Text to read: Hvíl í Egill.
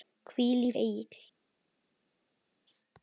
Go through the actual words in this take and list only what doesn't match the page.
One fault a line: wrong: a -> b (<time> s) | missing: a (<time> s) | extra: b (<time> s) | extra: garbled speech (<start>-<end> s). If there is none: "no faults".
no faults